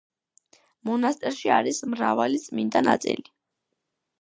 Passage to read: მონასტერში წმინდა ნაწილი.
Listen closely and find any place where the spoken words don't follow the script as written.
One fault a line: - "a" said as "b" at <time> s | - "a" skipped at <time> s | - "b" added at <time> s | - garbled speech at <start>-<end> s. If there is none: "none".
- "არის მრავალი" added at 1.6 s